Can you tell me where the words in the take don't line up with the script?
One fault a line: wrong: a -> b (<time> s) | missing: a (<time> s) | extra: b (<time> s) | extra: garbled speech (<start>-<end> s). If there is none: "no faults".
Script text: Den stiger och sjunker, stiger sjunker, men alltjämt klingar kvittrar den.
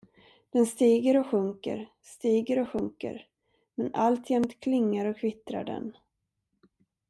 extra: och (2.6 s)
extra: och (5.0 s)